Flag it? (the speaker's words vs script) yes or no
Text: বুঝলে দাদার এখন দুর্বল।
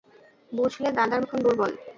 no